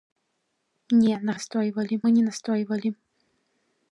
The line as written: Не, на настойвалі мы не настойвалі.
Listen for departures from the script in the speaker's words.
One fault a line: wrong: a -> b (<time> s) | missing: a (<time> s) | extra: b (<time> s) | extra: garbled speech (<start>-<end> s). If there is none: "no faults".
no faults